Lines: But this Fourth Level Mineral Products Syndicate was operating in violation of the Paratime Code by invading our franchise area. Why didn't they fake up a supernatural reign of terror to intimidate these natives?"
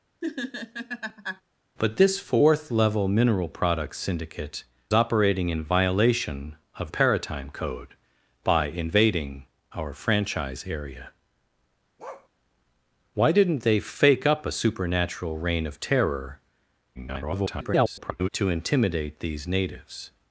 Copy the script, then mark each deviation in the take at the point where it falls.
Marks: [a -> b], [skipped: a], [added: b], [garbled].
But this Fourth Level Mineral Products Syndicate [skipped: was] operating in violation of [skipped: the] Paratime Code by invading our franchise area. Why didn't they fake up a supernatural reign of terror [garbled] to intimidate these natives?"